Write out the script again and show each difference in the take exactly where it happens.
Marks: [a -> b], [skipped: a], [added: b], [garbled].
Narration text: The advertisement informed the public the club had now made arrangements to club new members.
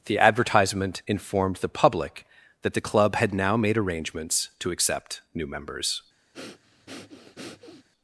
The advertisement informed the public [added: that] the club had now made arrangements to [club -> accept] new members.